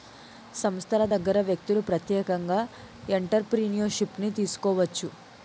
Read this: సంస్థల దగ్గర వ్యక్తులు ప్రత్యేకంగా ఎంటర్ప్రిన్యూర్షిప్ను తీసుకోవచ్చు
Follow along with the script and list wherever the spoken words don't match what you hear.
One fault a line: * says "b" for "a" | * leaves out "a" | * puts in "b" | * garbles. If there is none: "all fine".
all fine